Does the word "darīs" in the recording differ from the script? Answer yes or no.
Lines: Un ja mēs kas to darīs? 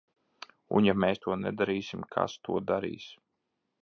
no